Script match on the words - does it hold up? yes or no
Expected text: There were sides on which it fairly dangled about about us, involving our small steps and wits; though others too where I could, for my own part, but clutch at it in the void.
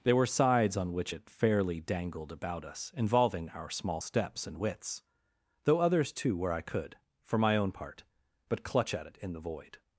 no